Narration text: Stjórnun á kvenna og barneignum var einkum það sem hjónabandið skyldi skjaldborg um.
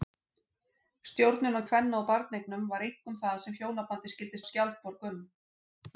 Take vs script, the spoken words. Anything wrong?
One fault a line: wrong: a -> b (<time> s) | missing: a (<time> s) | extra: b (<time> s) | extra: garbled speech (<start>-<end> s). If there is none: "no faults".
no faults